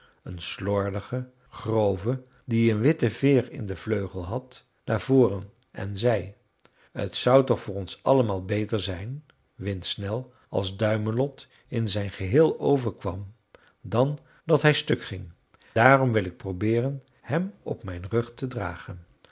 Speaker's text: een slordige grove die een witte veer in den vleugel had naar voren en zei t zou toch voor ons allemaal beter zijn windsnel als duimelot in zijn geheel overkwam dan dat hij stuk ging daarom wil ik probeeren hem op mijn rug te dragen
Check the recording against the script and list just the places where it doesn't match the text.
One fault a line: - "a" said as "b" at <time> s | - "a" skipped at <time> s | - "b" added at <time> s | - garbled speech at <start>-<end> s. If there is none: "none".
none